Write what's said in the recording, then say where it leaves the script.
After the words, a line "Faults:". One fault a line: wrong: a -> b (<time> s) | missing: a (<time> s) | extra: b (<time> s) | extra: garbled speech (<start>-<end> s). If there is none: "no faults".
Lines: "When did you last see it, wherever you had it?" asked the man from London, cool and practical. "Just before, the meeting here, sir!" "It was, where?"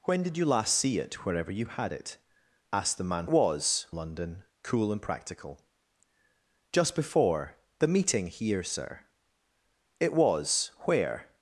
"When did you last see it, wherever you had it?" asked the man was London, cool and practical. "Just before, the meeting here, sir!" "It was, where?"
Faults:
wrong: from -> was (3.3 s)